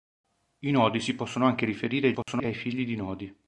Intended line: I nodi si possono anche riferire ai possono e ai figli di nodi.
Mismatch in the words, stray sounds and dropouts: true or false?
true